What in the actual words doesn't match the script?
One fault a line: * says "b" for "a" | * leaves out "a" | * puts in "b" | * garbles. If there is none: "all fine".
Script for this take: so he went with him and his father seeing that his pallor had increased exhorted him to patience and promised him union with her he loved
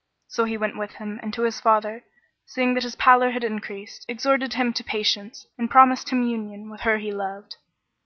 all fine